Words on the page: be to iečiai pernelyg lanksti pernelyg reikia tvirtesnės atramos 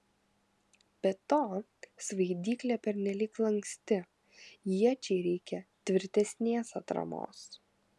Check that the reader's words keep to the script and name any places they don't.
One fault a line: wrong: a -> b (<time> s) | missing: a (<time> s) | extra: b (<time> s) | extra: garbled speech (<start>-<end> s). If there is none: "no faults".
wrong: iečiai -> svaidyklė (2.1 s)
wrong: pernelyg -> iečiai (4.8 s)